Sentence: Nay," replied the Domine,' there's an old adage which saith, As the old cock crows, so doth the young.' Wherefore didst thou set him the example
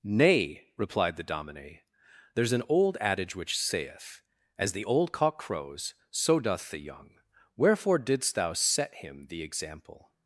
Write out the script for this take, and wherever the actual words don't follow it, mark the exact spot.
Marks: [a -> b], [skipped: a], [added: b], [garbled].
Nay," replied the Domine,' there's an old adage which saith, As the old cock crows, so doth the young.' Wherefore didst thou set him the example